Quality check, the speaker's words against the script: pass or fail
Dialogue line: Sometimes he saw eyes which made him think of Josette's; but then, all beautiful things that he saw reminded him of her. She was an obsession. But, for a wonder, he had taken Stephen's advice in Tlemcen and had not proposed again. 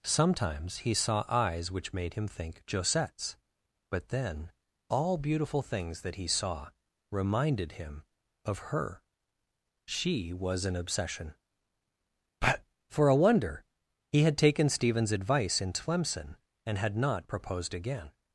fail